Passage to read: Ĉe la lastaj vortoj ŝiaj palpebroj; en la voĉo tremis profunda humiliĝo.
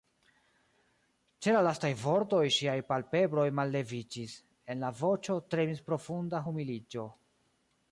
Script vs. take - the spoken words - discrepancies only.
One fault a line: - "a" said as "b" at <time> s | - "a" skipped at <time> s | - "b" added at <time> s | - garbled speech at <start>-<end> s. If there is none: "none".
- "malleviĝis" added at 3.6 s